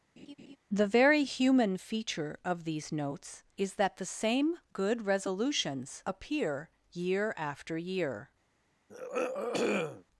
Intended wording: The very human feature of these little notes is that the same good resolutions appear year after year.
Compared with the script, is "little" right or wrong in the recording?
wrong